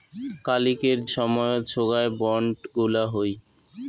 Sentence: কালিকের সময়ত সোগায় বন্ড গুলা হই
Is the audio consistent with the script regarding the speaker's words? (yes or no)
yes